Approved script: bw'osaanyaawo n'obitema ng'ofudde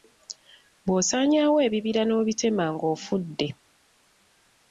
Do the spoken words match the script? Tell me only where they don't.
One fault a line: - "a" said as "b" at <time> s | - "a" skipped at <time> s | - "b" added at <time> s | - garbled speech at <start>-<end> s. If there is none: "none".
- "ebibira" added at 1.7 s